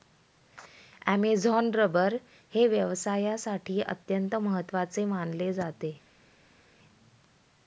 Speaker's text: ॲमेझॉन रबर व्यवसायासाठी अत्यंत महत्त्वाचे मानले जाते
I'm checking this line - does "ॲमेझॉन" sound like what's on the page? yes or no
yes